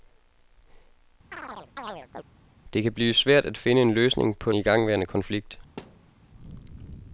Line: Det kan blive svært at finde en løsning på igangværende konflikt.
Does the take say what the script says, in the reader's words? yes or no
yes